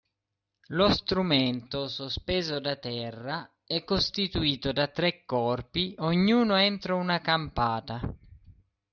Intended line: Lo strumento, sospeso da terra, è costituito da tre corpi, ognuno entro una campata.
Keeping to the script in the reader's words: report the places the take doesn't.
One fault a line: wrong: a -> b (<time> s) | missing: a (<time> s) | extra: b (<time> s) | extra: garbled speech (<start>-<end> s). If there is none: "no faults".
no faults